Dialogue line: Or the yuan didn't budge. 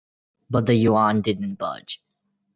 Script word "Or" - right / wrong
wrong